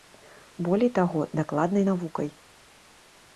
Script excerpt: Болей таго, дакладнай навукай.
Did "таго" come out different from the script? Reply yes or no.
no